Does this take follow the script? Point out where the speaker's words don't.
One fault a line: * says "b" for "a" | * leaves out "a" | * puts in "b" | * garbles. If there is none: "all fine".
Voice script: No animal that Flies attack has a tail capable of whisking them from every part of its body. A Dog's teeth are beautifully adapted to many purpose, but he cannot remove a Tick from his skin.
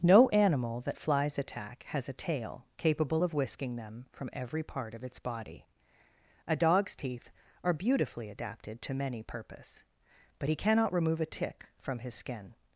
all fine